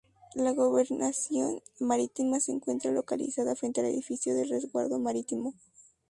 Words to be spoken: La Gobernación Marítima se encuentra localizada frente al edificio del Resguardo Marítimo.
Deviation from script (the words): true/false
false